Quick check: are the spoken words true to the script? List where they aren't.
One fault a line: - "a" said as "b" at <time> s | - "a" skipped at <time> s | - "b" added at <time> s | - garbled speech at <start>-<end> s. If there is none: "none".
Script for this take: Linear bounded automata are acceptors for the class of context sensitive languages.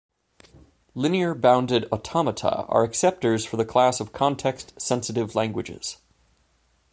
none